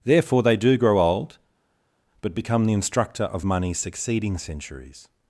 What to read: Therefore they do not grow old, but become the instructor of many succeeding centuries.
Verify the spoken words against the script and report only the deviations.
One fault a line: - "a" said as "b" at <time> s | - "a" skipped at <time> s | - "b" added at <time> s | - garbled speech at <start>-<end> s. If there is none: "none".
- "not" skipped at 0.8 s
- "many" said as "money" at 3.4 s